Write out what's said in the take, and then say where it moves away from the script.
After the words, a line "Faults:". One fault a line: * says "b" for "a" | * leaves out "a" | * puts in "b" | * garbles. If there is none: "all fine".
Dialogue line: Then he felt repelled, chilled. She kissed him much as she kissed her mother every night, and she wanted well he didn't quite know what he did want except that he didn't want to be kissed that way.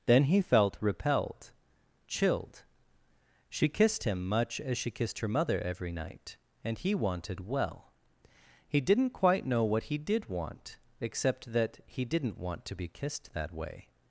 Then he felt repelled, chilled. She kissed him much as she kissed her mother every night, and he wanted well he didn't quite know what he did want except that he didn't want to be kissed that way.
Faults:
* says "he" for "she"